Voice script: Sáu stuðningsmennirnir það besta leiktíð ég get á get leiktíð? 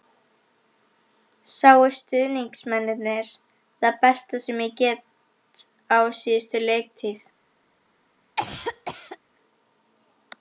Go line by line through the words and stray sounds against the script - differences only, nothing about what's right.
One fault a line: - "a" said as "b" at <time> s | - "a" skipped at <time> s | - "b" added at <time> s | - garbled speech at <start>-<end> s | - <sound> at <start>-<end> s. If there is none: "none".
- "leiktíð" said as "sem" at 4.5 s
- "get" said as "síðustu" at 6.2 s
- cough at 8.4-9.2 s